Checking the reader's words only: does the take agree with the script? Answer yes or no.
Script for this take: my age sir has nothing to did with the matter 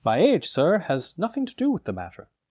no